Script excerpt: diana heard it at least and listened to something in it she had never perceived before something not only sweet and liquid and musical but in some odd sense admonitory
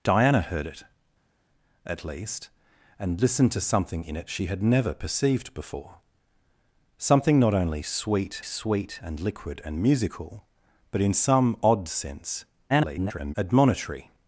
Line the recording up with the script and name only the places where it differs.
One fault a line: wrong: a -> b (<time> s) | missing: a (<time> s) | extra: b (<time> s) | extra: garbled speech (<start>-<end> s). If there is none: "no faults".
extra: sweet (8.4 s)
extra: garbled speech (12.7-13.3 s)